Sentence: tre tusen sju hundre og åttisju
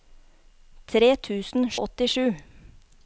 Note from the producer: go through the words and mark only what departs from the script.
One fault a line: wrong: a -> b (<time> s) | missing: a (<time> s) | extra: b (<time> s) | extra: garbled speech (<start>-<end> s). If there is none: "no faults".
missing: sju hundre (1.7 s)